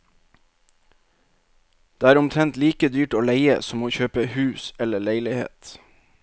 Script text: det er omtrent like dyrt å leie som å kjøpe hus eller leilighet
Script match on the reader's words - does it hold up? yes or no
yes